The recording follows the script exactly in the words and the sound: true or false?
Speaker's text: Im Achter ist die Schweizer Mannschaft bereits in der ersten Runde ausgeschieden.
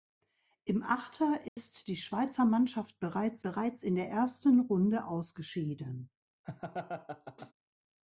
false